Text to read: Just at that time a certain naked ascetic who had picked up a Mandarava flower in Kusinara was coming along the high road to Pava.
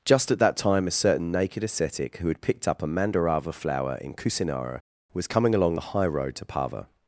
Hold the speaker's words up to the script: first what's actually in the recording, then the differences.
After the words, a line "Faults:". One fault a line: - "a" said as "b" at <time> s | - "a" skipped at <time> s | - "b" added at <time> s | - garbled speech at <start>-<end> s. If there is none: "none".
Just at that time a certain naked ascetic who had picked up a Mandarava flower in Kusinara was coming along the high road to Pava.
Faults:
none